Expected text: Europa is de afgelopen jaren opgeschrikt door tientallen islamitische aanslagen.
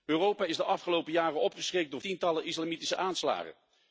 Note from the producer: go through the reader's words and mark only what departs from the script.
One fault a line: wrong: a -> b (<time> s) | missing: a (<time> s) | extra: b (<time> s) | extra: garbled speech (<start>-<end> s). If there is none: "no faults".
no faults